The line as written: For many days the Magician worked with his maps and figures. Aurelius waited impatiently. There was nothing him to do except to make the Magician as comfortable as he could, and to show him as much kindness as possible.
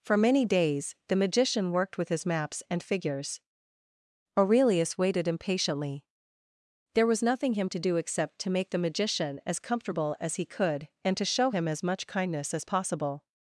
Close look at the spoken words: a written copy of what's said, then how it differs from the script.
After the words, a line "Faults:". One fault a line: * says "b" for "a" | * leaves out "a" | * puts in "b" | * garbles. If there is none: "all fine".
For many days the Magician worked with his maps and figures. Aurelius waited impatiently. There was nothing him to do except to make the Magician as comfortable as he could, and to show him as much kindness as possible.
Faults:
all fine